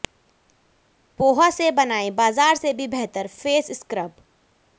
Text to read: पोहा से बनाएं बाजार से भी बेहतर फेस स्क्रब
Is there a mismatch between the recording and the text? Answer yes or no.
no